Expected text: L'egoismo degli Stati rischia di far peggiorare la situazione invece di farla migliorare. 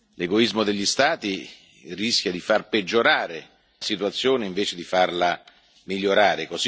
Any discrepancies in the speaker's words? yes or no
yes